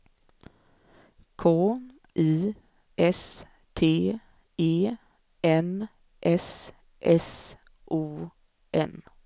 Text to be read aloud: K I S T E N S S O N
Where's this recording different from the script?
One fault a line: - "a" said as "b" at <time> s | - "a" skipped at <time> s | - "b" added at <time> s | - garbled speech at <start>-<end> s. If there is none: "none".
none